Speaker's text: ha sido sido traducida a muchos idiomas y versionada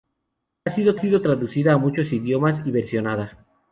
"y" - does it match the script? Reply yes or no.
yes